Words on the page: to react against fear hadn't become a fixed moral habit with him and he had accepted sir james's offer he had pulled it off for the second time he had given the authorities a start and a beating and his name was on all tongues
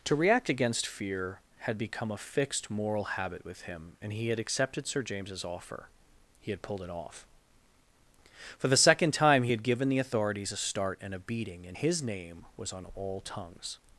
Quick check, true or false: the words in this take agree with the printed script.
false